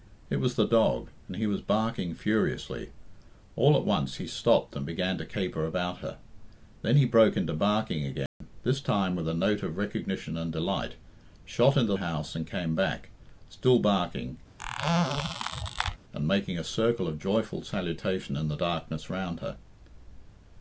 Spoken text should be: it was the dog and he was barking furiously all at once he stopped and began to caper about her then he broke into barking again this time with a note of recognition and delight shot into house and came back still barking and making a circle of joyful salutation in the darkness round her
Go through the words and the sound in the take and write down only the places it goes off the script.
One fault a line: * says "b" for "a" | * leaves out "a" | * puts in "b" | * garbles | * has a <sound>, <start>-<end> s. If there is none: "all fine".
* has a dropout, 8.3-8.4 s
* has a squeak, 14.6-16.0 s